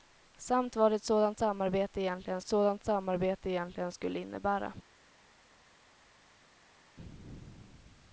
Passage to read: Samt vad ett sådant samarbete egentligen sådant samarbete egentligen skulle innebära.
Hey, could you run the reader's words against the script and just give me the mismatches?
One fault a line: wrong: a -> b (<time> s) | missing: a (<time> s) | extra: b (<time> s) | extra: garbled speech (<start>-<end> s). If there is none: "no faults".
no faults